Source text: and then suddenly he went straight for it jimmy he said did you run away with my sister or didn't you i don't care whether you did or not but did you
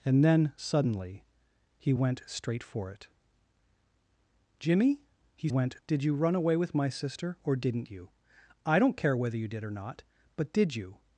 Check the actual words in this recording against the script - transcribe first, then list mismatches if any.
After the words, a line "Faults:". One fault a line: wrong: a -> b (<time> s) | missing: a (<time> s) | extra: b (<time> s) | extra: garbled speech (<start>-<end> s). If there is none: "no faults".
and then suddenly he went straight for it jimmy he went did you run away with my sister or didn't you i don't care whether you did or not but did you
Faults:
wrong: said -> went (5.5 s)